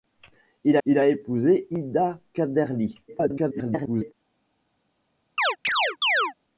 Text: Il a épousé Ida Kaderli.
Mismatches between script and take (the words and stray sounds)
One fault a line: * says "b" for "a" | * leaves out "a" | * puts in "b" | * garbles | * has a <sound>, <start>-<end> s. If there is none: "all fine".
* puts in "il"
* garbles
* has a chirp, 5.4-6.3 s